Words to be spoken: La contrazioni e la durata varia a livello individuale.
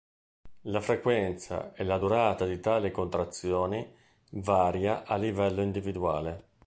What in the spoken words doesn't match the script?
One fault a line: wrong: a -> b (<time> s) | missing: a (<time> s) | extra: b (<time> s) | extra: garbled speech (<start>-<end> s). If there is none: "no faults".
wrong: contrazioni -> frequenza (0.8 s)
extra: di tali contrazioni (2.5 s)